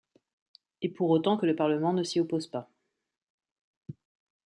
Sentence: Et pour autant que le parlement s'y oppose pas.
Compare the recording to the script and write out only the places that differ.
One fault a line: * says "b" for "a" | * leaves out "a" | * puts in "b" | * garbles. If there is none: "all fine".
* puts in "ne"